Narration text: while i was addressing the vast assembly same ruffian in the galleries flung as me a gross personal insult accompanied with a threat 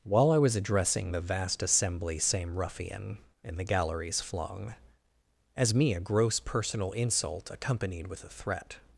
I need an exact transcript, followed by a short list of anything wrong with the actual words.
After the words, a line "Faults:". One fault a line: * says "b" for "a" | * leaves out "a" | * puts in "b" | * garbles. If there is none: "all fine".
while i was addressing the vast assembly same ruffian in the galleries flung as me a gross personal insult accompanied with a threat
Faults:
all fine